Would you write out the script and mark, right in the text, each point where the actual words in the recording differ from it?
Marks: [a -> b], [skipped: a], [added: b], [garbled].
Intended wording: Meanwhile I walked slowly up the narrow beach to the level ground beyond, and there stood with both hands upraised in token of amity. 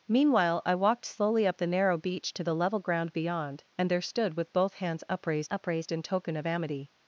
Meanwhile I walked slowly up the narrow beach to the level ground beyond, and there stood with both hands upraised [added: upraised] in token of amity.